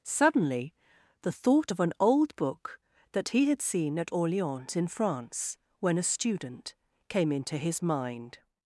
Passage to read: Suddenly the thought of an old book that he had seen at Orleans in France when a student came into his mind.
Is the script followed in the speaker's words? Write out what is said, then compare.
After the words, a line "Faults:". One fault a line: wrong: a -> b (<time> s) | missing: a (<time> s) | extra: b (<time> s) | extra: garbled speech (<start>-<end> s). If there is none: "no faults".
Suddenly the thought of an old book that he had seen at Orleans in France when a student came into his mind.
Faults:
no faults